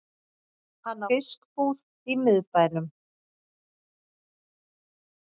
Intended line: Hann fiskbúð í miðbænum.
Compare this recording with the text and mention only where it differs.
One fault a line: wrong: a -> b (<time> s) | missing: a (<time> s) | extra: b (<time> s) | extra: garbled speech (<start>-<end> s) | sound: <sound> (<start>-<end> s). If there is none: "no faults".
no faults